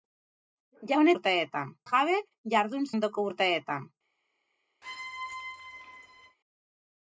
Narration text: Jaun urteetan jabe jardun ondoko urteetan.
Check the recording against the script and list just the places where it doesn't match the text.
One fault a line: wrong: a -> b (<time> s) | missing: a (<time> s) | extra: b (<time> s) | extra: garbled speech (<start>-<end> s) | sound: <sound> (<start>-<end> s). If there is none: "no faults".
sound: squeak (4.8-6.4 s)